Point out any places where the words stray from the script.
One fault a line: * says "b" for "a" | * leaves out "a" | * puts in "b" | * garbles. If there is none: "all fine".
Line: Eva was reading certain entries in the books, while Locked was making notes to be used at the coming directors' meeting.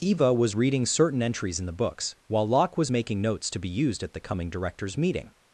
* says "Locke" for "Locked"